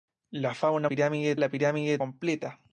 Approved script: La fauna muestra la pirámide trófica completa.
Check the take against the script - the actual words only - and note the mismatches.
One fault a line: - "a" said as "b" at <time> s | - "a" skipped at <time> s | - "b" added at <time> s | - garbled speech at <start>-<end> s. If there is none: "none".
- "muestra" said as "pirámide" at 0.9 s
- "trófica" skipped at 2.0 s